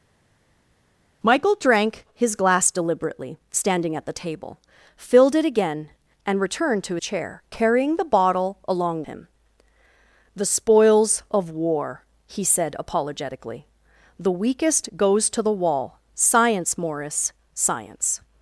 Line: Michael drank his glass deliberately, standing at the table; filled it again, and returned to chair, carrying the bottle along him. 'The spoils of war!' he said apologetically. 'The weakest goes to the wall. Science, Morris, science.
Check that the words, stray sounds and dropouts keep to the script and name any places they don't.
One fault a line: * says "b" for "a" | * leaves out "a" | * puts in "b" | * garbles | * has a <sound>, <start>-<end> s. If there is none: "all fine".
all fine